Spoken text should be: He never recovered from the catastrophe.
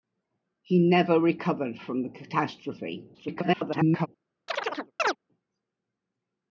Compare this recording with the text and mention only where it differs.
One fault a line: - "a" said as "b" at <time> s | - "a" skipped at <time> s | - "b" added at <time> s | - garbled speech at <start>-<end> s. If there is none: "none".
- garbled speech at 3.1-4.1 s